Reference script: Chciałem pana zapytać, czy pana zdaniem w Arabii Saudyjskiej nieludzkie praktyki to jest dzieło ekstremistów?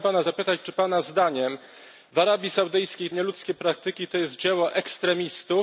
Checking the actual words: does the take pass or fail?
pass